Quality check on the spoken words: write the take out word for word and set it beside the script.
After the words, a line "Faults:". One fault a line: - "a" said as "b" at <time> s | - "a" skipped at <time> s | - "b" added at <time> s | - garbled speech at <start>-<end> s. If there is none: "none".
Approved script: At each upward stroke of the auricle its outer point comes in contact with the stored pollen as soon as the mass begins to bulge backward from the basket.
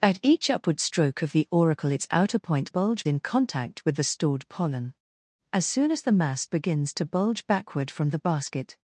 At each upward stroke of the auricle its outer point bulge in contact with the stored pollen as soon as the mass begins to bulge backward from the basket.
Faults:
- "comes" said as "bulge" at 2.7 s